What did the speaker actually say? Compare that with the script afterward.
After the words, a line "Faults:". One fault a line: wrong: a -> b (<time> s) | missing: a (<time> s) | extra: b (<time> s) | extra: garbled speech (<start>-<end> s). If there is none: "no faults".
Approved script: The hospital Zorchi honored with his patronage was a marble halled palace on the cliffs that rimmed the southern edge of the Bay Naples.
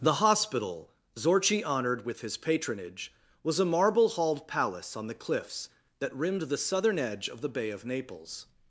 The hospital Zorchi honored with his patronage was a marble halled palace on the cliffs that rimmed the southern edge of the Bay of Naples.
Faults:
extra: of (7.7 s)